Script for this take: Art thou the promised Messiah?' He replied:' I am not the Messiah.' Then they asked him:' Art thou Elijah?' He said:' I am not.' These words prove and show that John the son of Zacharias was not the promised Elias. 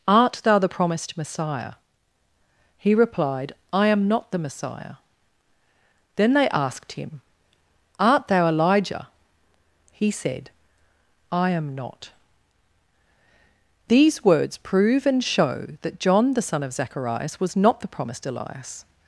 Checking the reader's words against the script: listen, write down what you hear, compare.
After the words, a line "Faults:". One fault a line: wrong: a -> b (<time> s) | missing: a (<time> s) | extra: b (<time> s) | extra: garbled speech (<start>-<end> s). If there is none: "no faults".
Art thou the promised Messiah?' He replied:' I am not the Messiah.' Then they asked him:' Art thou Elijah?' He said:' I am not.' These words prove and show that John the son of Zacharias was not the promised Elias.
Faults:
no faults